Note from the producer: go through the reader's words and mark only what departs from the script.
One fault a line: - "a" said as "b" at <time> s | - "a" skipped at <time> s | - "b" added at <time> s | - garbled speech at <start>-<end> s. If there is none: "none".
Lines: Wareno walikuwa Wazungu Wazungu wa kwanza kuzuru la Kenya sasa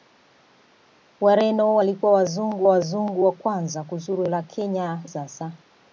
none